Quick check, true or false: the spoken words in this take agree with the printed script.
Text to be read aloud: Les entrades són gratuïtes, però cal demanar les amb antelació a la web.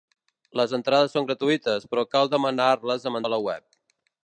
false